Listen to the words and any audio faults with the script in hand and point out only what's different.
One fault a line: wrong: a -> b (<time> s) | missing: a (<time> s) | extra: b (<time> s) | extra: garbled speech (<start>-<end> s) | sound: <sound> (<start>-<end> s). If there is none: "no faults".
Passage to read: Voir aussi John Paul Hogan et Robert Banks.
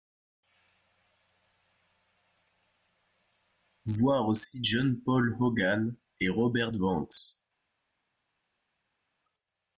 no faults